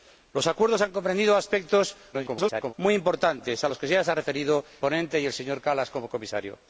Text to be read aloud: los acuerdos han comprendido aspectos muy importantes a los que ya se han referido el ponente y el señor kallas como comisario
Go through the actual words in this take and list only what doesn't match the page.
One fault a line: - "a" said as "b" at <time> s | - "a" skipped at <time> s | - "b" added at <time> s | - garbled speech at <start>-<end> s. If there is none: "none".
- garbled speech at 2.1-2.7 s
- "el" skipped at 4.6 s